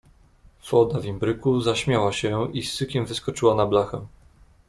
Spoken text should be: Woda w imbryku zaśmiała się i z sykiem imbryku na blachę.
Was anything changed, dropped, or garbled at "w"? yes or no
no